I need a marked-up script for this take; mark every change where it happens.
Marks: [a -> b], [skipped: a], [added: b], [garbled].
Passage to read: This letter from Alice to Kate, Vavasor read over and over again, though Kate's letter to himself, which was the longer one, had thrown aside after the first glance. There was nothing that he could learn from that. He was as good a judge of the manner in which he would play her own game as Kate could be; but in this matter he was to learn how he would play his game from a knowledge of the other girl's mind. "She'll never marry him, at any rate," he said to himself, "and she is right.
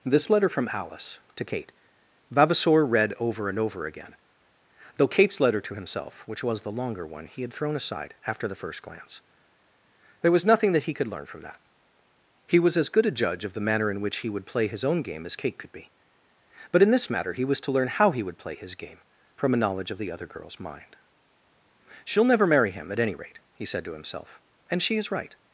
This letter from Alice to Kate, Vavasor read over and over again, though Kate's letter to himself, which was the longer one, [added: he] had thrown aside after the first glance. There was nothing that he could learn from that. He was as good a judge of the manner in which he would play [her -> his] own game as Kate could be; but in this matter he was to learn how he would play his game from a knowledge of the other girl's mind. "She'll never marry him, at any rate," he said to himself, "and she is right.